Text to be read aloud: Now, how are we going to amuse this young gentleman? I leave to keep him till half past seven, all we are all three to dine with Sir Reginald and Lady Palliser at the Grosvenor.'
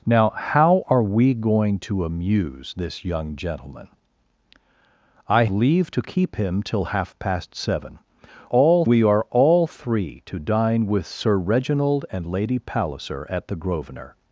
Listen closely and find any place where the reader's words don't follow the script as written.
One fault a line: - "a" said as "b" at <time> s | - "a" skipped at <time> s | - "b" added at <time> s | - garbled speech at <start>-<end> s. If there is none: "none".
none